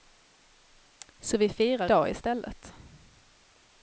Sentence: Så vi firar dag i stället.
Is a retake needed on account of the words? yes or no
no